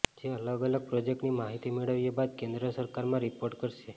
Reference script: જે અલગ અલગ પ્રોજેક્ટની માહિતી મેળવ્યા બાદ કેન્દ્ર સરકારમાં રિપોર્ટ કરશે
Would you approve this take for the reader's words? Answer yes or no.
yes